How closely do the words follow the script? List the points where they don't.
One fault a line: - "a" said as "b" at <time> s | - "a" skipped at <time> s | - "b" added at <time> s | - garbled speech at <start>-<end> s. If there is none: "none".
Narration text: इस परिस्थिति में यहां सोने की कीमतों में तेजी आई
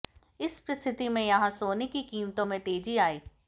none